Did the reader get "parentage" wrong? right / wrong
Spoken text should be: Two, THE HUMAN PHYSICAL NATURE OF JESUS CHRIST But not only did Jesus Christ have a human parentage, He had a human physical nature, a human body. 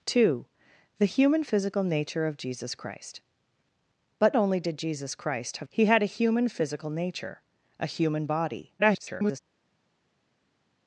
wrong